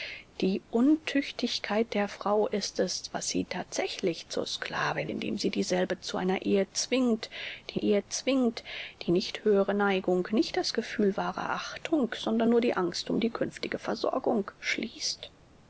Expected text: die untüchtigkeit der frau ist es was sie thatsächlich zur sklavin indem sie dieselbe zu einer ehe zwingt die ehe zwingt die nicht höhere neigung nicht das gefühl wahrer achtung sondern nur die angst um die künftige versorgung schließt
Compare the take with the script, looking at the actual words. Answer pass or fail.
pass